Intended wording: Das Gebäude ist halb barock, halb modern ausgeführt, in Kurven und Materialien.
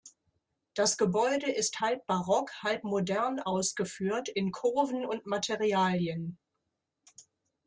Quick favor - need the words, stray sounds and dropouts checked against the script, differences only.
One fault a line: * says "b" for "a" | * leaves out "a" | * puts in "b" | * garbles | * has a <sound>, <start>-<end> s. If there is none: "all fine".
all fine